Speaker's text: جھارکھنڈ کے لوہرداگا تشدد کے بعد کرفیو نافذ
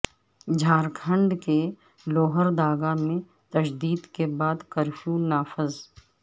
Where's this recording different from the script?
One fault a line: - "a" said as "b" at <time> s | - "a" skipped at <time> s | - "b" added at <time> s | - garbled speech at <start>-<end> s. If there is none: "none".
- "میں" added at 3.0 s